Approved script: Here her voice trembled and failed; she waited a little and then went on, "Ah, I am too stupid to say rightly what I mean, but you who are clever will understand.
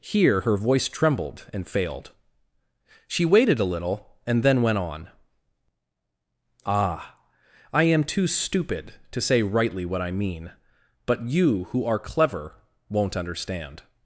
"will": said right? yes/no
no